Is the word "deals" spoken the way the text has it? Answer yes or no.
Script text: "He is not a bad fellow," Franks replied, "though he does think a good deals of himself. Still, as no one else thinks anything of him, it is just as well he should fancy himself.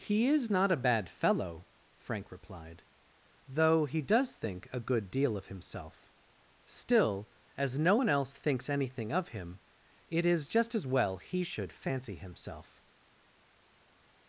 no